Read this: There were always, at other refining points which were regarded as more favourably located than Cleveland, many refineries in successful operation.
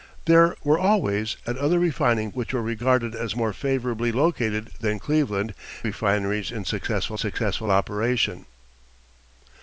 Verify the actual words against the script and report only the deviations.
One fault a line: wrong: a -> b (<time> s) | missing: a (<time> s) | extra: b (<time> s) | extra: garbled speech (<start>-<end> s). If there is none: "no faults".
missing: points (2.3 s)
missing: many (5.5 s)
extra: successful (7.1 s)